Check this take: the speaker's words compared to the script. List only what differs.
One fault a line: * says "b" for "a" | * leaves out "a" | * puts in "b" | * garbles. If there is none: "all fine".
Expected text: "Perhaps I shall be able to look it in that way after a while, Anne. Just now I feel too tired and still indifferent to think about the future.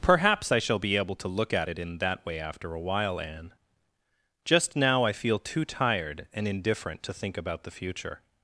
* puts in "at"
* leaves out "still"